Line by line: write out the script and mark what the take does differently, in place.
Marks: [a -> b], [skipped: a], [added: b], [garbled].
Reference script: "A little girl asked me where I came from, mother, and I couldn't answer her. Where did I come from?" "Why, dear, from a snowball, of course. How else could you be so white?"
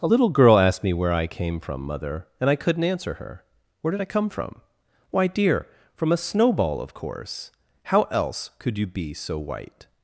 "A little girl asked me where I came from, mother, and I couldn't answer her. Where did I come from?" "Why, dear, from a snowball, of course. How else could you be so white?"